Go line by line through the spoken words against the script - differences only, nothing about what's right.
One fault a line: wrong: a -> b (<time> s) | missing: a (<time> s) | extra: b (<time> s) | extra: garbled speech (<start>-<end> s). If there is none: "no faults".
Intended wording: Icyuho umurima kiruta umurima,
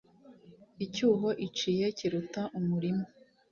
wrong: umurima -> iciye (1.5 s)